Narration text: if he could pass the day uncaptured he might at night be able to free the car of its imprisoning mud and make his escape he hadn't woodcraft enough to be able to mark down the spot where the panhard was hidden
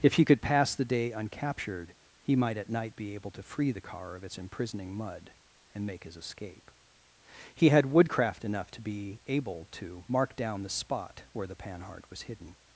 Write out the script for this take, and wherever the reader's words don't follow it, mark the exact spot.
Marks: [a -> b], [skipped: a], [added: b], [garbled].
if he could pass the day uncaptured he might at night be able to free the car of its imprisoning mud and make his escape he [hadn't -> had] woodcraft enough to be able to mark down the spot where the panhard was hidden